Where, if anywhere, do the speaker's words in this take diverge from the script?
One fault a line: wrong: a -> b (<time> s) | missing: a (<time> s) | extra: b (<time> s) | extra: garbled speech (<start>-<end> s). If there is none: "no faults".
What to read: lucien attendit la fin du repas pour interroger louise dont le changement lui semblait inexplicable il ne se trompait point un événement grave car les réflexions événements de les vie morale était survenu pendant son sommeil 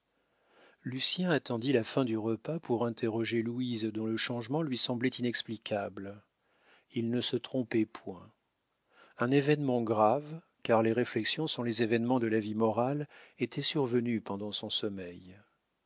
extra: sont les (11.4 s)
wrong: les -> la (12.2 s)